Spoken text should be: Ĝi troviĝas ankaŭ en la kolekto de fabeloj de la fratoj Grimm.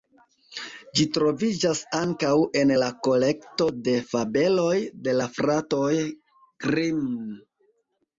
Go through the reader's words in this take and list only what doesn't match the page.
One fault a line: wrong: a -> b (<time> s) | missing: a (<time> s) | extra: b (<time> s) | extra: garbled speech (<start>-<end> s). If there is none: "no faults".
no faults